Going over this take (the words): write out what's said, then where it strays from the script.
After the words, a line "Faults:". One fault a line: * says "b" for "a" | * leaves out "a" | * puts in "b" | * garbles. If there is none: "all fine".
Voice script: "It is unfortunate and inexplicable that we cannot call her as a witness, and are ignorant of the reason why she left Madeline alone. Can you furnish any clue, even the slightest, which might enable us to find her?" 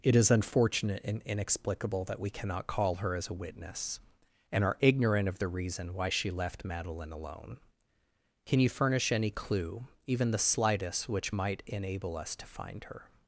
"It is unfortunate and inexplicable that we cannot call her as a witness, and are ignorant of the reason why she left Madeline alone. Can you furnish any clue, even the slightest, which might enable us to find her?"
Faults:
all fine